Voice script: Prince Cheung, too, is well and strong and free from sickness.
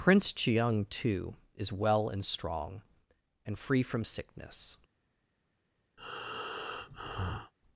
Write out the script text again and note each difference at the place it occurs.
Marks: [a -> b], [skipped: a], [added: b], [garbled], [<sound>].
Prince Cheung, too, is well and strong and free from sickness. [breath]